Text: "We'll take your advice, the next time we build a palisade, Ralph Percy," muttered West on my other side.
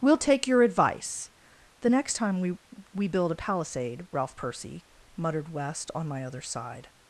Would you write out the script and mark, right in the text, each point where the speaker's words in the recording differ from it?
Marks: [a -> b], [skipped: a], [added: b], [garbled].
"We'll take your advice, the next time we [added: we] build a palisade, Ralph Percy," muttered West on my other side.